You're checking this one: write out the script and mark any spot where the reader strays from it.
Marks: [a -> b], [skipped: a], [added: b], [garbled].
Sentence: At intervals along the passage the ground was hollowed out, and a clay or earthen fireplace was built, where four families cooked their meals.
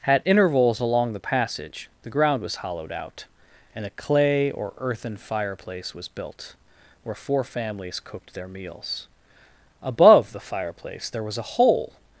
At intervals along the passage the ground was hollowed out, and a clay or earthen fireplace was built, where four families cooked their meals. [added: Above the fireplace there was a hole]